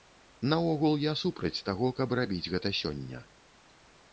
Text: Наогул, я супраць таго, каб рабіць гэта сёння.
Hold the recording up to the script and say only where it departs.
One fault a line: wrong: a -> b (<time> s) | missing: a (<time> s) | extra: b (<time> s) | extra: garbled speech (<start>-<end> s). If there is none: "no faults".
no faults